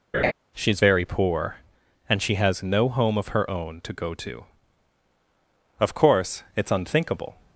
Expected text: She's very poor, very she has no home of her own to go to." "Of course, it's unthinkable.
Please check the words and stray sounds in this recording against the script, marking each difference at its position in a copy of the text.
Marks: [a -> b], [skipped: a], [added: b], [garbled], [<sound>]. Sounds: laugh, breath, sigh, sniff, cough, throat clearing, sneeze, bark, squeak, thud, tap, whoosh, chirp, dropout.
[laugh] She's very poor, [very -> and] she has no home of her own to go to." "Of course, it's unthinkable.